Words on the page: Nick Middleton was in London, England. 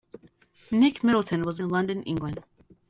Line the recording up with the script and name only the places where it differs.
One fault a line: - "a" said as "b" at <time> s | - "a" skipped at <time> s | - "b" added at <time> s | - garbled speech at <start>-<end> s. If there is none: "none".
none